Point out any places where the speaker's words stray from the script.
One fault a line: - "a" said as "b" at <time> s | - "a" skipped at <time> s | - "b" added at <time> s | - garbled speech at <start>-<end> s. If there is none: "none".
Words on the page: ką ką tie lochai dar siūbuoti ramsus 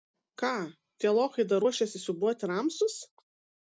- "ką" skipped at 0.5 s
- "ruošiasi" added at 1.6 s